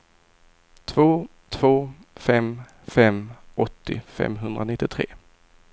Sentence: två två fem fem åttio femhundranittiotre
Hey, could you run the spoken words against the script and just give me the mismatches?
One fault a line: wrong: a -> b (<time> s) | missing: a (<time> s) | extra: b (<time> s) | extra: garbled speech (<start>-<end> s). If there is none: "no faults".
no faults